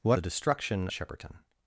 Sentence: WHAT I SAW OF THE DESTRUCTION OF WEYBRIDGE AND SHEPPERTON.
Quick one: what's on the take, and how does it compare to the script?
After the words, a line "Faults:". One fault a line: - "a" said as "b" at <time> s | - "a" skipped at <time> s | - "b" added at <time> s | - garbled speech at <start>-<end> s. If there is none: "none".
WHAT THE DESTRUCTION SHEPPERTON.
Faults:
- "I SAW OF" skipped at 0.2 s
- "OF WEYBRIDGE AND" skipped at 0.9 s